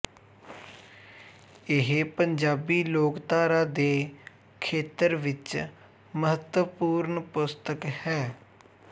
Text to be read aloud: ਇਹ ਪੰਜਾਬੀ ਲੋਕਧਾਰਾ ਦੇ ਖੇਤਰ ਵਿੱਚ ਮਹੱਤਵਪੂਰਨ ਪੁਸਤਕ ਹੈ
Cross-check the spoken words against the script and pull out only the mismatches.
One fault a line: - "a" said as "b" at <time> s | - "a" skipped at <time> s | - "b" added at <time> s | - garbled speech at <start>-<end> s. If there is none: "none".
none